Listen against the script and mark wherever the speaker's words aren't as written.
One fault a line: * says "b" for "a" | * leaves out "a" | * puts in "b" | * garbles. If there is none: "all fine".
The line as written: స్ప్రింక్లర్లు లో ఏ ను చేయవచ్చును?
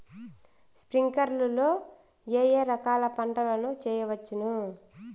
* puts in "ఏ రకాల పంటల"